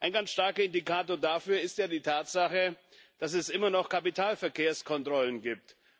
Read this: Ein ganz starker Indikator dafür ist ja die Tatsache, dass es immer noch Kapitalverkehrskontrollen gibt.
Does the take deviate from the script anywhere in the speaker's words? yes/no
no